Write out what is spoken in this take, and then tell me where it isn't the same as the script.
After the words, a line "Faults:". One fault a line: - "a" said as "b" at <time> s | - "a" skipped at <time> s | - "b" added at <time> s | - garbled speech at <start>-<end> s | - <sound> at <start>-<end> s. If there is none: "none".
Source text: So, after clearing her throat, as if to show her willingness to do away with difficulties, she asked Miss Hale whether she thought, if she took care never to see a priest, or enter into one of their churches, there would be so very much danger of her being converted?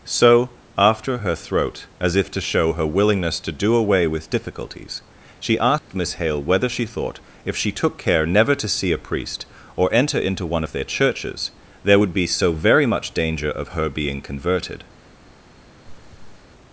So, after her throat, as if to show her willingness to do away with difficulties, she asked Miss Hale whether she thought, if she took care never to see a priest, or enter into one of their churches, there would be so very much danger of her being converted?
Faults:
- "clearing" skipped at 1.2 s
- dropout at 5.8-5.9 s
- throat clearing at 15.9-16.4 s